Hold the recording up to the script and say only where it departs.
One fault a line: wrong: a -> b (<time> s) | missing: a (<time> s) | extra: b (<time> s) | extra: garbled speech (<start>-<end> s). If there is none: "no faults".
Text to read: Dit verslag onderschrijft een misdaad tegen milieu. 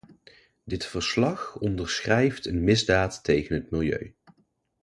extra: het (3.6 s)